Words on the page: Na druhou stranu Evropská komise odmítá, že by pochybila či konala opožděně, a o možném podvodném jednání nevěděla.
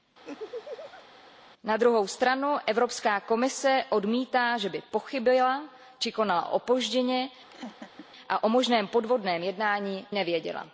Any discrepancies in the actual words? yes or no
no